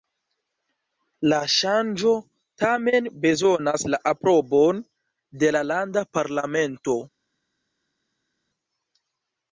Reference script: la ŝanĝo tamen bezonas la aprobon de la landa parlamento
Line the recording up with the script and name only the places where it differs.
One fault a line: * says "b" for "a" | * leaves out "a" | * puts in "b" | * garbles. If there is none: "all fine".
all fine